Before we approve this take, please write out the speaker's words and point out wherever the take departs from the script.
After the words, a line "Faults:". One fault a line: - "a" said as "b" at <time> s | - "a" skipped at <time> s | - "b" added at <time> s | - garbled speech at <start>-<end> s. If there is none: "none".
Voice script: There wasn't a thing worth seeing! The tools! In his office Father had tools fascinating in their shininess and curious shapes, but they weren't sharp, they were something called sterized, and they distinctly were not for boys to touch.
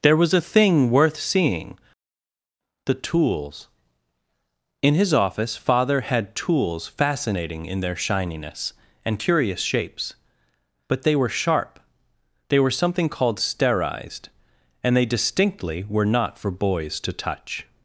There was a thing worth seeing! The tools! In his office Father had tools fascinating in their shininess and curious shapes, but they were sharp, they were something called sterized, and they distinctly were not for boys to touch.
Faults:
- "wasn't" said as "was" at 0.2 s
- "weren't" said as "were" at 11.2 s